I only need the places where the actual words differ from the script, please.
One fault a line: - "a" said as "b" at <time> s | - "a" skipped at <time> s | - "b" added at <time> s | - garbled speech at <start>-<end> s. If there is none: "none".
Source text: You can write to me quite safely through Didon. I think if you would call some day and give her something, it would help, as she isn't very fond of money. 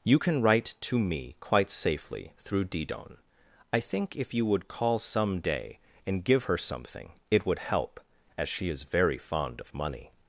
- "isn't" said as "is" at 8.7 s